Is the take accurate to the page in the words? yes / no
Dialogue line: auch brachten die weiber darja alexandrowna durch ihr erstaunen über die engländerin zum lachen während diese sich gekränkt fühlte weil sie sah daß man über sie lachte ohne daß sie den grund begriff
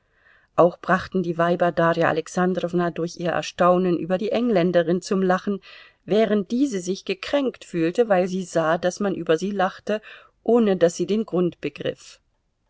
yes